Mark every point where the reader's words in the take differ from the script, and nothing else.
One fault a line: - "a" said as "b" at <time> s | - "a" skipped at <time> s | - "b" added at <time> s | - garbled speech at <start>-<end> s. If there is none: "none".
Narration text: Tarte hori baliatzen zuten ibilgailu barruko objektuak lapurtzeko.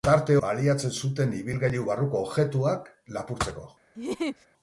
- "hori" skipped at 0.3 s